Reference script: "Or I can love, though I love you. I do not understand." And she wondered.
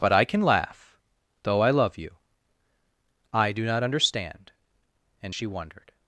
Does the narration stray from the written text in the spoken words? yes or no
yes